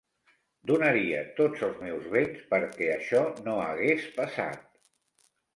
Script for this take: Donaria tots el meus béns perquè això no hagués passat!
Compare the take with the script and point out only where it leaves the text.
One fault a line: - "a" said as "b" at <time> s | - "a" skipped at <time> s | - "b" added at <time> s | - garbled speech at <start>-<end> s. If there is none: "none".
- "el" said as "els" at 1.7 s